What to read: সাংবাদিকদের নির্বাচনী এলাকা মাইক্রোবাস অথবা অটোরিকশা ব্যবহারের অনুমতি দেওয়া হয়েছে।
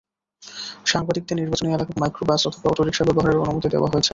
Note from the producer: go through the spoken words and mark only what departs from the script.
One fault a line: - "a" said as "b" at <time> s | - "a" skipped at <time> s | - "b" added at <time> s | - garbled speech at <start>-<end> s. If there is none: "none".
none